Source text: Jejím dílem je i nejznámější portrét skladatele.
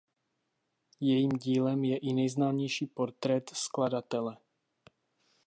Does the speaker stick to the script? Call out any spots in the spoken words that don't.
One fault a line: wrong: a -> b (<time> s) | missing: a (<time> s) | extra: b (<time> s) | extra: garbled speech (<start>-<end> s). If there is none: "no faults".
no faults